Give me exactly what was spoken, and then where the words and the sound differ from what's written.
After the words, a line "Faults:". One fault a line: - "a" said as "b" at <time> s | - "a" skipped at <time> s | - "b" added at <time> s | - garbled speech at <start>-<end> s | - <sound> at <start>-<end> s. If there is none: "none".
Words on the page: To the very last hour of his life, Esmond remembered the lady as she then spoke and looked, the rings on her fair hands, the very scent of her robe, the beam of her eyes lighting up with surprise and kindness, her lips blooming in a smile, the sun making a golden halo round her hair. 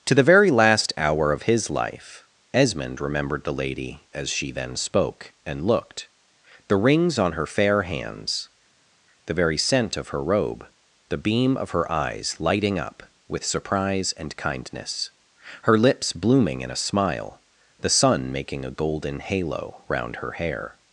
To the very last hour of his life, Esmond remembered the lady as she then spoke and looked, the rings on her fair hands, the very scent of her robe, the beam of her eyes lighting up with surprise and kindness, her lips blooming in a smile, the sun making a golden halo round her hair.
Faults:
none